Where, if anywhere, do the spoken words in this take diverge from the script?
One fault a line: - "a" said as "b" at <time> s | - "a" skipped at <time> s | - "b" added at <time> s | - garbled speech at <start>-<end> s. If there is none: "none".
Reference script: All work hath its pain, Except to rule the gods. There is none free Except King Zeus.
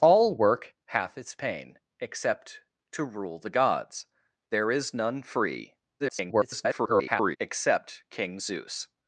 - garbled speech at 6.0-7.4 s